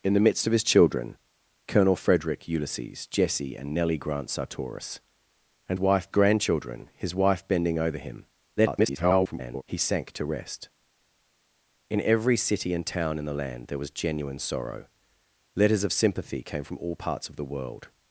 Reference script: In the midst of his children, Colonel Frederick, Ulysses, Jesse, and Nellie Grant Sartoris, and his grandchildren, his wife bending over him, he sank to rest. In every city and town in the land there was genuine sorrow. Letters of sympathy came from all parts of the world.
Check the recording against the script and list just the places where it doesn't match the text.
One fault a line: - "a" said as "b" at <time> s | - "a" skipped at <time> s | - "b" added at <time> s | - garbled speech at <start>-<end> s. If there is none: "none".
- "his" said as "wife" at 5.8 s
- garbled speech at 8.6-9.6 s